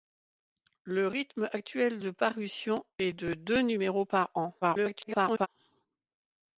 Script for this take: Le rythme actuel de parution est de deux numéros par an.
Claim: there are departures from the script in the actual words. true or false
true